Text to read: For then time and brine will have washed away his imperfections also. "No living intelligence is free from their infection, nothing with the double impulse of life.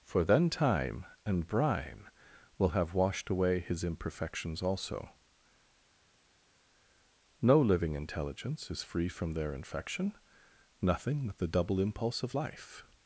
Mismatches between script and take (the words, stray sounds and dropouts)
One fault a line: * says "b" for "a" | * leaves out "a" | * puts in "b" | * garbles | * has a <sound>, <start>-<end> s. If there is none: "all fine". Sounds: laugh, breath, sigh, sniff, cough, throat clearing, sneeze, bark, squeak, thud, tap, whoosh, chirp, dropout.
* says "but" for "with"